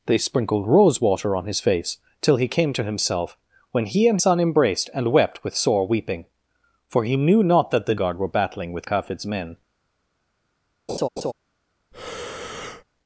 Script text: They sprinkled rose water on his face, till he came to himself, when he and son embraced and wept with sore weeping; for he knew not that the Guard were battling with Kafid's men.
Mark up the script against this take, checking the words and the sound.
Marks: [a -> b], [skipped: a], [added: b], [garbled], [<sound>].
They sprinkled rose water on his face, till he came to himself, when he and son embraced and wept with sore weeping; for he knew not that the Guard were battling with Kafid's men. [laugh] [breath]